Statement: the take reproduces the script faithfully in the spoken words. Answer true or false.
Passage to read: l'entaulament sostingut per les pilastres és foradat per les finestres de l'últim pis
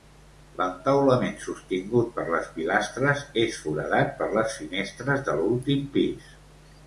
true